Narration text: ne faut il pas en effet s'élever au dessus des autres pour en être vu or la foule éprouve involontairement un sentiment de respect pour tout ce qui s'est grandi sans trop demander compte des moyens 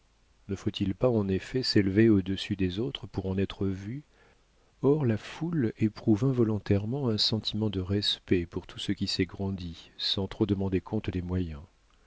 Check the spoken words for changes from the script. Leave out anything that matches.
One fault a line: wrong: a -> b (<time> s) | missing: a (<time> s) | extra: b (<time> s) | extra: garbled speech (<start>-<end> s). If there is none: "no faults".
no faults